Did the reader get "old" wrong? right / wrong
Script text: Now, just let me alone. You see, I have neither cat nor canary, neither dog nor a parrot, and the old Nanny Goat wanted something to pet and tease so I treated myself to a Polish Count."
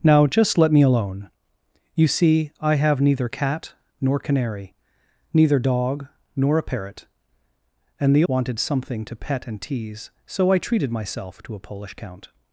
wrong